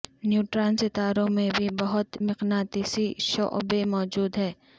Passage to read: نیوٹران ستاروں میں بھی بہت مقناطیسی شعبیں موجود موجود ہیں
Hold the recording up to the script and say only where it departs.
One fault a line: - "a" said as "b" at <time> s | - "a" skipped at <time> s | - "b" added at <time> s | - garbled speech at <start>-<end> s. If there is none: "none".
- "موجود" skipped at 4.4 s